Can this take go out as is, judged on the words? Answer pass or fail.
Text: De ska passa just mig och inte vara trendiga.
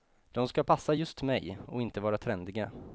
pass